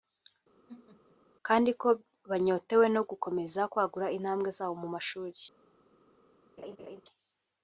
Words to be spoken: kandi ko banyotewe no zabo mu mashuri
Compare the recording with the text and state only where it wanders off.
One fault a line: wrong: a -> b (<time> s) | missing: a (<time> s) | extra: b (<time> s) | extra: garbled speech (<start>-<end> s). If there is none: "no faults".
extra: gukomeza kwagura intambwe (3.1 s)